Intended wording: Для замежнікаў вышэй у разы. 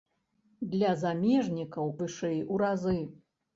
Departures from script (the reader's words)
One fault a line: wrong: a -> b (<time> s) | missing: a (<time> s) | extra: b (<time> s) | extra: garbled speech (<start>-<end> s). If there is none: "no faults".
no faults